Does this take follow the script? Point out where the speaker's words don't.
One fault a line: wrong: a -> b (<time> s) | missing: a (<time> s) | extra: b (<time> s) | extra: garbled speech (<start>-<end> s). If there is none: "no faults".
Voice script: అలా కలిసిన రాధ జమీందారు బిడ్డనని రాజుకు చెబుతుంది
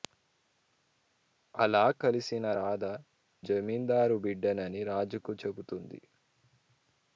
no faults